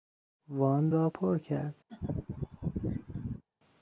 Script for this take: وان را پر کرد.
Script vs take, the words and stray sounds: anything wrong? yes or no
yes